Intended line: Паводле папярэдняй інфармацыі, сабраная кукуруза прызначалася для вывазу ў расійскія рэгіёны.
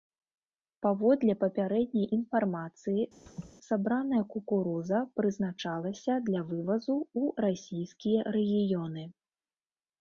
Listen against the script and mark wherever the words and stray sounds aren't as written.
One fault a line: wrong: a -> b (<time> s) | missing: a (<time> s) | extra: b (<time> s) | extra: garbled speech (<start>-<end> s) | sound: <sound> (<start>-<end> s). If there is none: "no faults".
sound: laugh (3.3-3.5 s)